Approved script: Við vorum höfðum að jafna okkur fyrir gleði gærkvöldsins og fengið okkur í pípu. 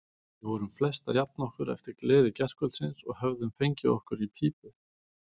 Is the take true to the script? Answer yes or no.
no